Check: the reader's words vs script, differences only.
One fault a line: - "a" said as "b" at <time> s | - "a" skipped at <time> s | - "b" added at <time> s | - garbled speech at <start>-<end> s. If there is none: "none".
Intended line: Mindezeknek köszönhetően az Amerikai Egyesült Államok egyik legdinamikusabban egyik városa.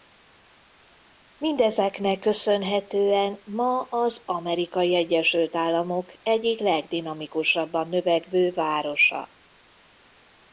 - "ma" added at 3.5 s
- "egyik" said as "növekvő" at 7.9 s